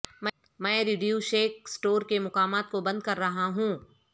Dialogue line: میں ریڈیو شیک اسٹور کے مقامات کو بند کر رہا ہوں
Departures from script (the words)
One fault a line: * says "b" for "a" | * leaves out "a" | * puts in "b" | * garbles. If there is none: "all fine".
all fine